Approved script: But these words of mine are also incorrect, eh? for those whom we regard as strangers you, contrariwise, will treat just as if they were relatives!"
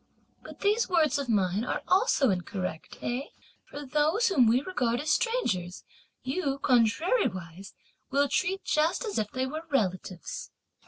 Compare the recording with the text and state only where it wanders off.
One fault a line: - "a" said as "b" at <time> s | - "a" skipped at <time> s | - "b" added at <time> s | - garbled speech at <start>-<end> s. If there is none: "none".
none